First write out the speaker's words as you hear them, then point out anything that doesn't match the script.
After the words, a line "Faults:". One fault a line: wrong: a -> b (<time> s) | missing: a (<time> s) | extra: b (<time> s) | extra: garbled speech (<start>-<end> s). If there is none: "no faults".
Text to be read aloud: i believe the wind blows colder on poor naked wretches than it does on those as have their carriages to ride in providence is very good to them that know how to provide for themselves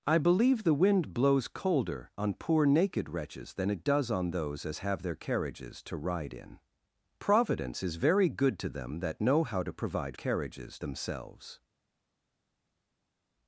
i believe the wind blows colder on poor naked wretches than it does on those as have their carriages to ride in providence is very good to them that know how to provide carriages themselves
Faults:
wrong: for -> carriages (10.1 s)